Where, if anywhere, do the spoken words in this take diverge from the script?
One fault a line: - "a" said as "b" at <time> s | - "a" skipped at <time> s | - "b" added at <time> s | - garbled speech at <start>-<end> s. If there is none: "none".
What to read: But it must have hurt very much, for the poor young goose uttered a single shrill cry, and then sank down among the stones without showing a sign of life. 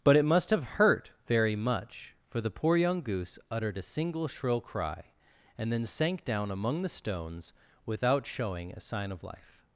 none